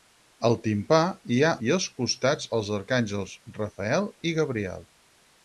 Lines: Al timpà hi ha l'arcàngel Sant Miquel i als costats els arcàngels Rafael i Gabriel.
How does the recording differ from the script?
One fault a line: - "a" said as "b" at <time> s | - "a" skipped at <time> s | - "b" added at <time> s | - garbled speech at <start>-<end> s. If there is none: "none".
- "l'arcàngel Sant Miquel" skipped at 1.5 s